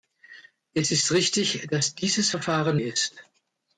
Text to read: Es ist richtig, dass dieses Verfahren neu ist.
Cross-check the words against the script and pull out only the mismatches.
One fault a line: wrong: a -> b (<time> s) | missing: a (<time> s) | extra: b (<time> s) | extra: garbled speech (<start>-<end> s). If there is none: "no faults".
missing: neu (2.8 s)